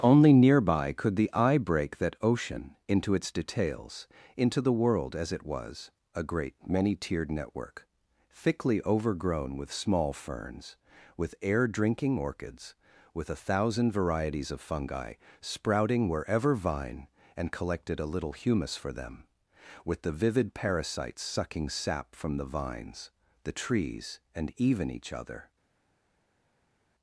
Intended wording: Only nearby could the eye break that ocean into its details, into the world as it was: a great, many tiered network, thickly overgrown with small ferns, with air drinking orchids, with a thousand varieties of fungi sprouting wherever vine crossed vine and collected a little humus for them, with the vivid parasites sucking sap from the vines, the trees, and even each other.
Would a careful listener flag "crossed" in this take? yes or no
yes